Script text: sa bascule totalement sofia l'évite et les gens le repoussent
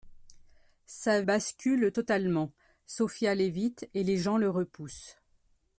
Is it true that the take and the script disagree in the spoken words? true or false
false